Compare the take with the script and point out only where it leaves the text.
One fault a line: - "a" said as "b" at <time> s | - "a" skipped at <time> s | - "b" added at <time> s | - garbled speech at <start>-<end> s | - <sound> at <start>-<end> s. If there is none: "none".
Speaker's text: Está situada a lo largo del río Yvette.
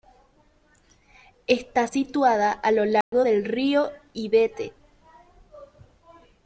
- dropout at 3.0-3.1 s